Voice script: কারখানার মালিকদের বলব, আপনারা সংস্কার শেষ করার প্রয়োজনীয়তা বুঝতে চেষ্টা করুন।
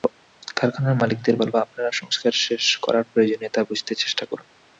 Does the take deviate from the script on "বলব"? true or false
false